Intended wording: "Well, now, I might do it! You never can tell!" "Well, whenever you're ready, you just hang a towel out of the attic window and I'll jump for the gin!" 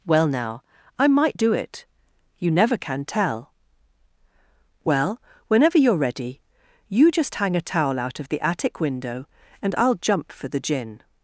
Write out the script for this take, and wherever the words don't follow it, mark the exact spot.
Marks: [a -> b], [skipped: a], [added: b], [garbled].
"Well, now, I might do it! You never can tell!" "Well, whenever you're ready, you just hang a towel out of the attic window and I'll jump for the gin!"